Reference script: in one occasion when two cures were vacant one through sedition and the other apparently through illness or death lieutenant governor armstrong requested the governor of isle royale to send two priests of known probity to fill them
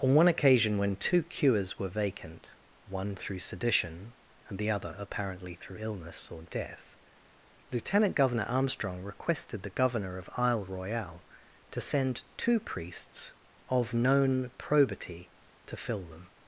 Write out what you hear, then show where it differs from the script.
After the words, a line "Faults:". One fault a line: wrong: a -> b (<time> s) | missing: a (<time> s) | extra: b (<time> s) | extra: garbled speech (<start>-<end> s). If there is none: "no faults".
on one occasion when two cures were vacant one through sedition and the other apparently through illness or death lieutenant governor armstrong requested the governor of isle royale to send two priests of known probity to fill them
Faults:
wrong: in -> on (0.0 s)